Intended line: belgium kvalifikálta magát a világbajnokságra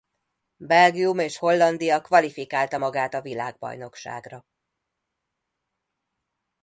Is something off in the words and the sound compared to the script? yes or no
yes